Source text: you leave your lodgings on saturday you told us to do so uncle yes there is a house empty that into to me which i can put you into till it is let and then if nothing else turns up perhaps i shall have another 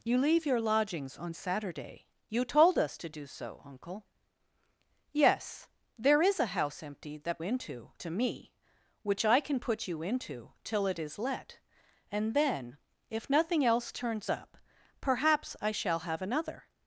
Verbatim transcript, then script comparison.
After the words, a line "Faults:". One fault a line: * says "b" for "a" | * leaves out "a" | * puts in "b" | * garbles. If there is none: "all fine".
you leave your lodgings on saturday you told us to do so uncle yes there is a house empty that into to me which i can put you into till it is let and then if nothing else turns up perhaps i shall have another
Faults:
all fine